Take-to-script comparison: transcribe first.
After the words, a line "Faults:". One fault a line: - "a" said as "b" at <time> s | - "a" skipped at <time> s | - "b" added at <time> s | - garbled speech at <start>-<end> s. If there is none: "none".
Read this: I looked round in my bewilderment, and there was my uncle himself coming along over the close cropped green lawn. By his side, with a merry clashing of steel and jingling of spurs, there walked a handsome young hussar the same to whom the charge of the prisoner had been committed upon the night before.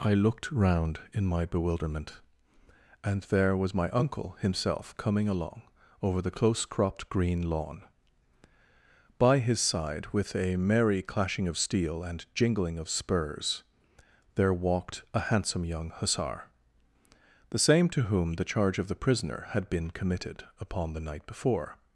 I looked round in my bewilderment, and there was my uncle himself coming along over the close cropped green lawn. By his side, with a merry clashing of steel and jingling of spurs, there walked a handsome young hussar the same to whom the charge of the prisoner had been committed upon the night before.
Faults:
none